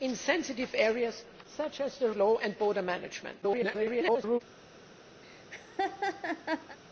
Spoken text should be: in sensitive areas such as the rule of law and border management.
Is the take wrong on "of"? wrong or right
wrong